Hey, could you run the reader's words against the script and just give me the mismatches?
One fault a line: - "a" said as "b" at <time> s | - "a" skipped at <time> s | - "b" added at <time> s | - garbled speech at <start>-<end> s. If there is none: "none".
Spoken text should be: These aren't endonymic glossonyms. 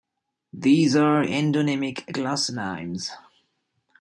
- "aren't" said as "are" at 0.9 s